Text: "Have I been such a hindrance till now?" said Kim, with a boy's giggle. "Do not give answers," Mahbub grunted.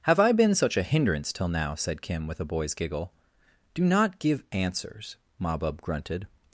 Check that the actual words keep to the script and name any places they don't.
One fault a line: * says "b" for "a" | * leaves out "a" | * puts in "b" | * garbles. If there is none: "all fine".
all fine